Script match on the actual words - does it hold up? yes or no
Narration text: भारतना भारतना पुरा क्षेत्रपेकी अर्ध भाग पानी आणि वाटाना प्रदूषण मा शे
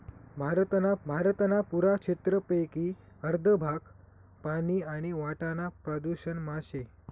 yes